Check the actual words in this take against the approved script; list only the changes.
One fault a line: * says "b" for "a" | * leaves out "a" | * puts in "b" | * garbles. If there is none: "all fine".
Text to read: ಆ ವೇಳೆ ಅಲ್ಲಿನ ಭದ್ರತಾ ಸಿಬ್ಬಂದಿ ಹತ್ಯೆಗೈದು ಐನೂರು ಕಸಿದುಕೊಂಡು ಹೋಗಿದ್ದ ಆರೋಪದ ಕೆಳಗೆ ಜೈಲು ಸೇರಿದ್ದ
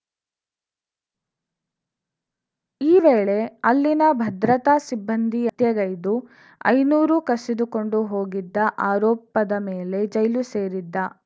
* says "ಈ" for "ಆ"
* says "ಮೇಲೆ" for "ಕೆಳಗೆ"